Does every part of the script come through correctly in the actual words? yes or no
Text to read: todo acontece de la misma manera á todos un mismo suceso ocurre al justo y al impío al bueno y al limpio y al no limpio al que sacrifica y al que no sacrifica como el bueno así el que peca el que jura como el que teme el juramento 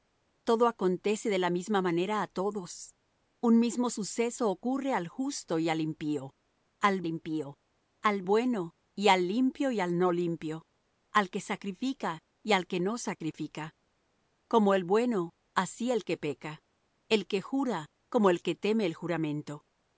no